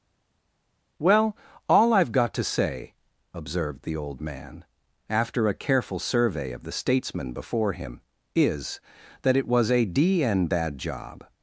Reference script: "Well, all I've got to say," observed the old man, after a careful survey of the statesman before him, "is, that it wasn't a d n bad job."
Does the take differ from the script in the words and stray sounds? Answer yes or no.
yes